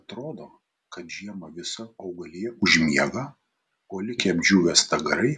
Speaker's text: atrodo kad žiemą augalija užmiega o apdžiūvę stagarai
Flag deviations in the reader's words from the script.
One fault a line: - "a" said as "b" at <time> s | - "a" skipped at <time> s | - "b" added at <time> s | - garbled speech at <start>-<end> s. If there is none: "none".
- "visa" added at 1.6 s
- "likę" added at 4.1 s